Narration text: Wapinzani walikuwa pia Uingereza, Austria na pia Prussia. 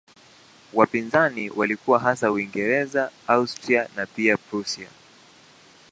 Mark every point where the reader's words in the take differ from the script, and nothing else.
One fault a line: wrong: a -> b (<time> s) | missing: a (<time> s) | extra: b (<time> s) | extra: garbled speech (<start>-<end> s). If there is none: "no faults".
wrong: pia -> hasa (2.0 s)